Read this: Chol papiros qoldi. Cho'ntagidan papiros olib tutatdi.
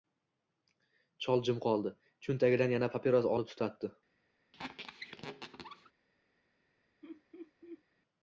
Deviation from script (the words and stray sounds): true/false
true